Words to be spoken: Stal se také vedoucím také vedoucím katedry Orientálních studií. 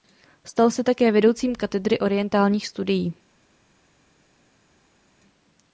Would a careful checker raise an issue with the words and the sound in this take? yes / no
yes